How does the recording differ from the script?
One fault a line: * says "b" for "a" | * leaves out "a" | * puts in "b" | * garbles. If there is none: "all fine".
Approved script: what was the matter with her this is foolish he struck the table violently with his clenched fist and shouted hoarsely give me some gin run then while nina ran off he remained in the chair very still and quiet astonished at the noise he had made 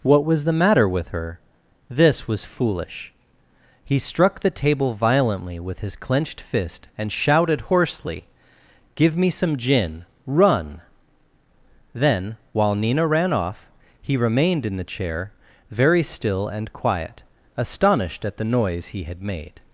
* says "was" for "is"